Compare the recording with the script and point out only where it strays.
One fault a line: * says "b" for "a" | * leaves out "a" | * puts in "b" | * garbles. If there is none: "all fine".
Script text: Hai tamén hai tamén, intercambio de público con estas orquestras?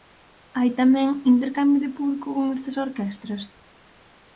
* leaves out "hai tamén"